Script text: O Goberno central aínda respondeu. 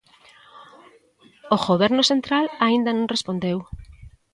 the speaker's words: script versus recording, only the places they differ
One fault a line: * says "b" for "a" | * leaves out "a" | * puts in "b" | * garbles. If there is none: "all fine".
* puts in "non"